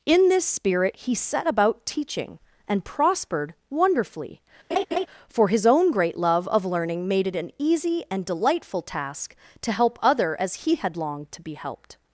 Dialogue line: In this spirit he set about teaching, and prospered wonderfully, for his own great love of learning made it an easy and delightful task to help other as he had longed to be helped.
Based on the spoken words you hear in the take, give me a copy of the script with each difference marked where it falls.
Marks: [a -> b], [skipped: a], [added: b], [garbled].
In this spirit he set about teaching, and prospered wonderfully, for his own great love of learning made it an easy and delightful task to help other as he had longed to be helped.